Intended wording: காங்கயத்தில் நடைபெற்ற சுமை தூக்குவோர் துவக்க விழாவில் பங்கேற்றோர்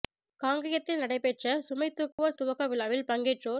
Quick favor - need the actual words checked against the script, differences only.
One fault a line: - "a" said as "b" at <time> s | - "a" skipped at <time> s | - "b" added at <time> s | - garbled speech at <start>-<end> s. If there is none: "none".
none